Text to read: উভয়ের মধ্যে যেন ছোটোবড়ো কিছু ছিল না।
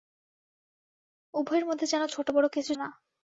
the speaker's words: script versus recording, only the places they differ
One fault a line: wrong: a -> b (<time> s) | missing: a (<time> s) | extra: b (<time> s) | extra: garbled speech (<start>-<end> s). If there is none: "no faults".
missing: ছিল (2.7 s)